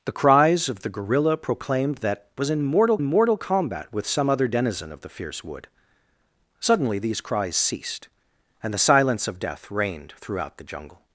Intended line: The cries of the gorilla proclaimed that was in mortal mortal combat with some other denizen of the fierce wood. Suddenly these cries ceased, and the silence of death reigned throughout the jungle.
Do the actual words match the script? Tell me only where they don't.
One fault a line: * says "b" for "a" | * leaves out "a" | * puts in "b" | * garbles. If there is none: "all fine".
all fine